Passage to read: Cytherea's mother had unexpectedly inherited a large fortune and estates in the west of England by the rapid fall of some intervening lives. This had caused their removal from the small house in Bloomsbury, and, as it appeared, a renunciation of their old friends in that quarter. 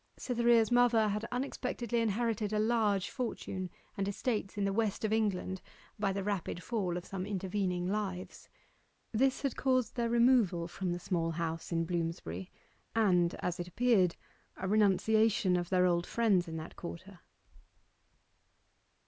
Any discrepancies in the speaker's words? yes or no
no